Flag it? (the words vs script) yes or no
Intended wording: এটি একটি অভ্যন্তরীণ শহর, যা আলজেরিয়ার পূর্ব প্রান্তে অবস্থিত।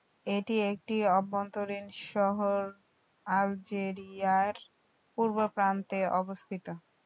yes